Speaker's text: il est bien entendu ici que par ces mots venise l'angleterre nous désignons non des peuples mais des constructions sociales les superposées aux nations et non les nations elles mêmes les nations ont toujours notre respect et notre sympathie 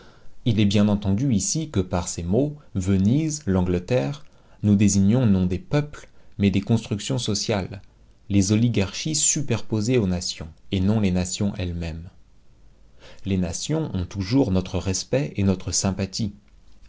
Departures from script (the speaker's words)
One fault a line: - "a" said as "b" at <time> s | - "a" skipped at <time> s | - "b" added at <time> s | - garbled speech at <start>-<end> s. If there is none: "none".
- "oligarchies" added at 8.5 s